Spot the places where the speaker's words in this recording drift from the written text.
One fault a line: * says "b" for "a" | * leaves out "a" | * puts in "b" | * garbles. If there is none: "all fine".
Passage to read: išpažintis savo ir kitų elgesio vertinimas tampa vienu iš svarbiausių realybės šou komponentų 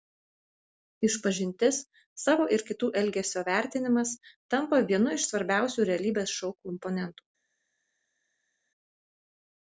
all fine